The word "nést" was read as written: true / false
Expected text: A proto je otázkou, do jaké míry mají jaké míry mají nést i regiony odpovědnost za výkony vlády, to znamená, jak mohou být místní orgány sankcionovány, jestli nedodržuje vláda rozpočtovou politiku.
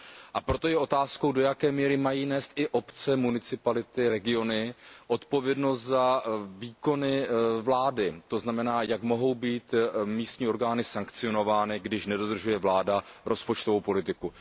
false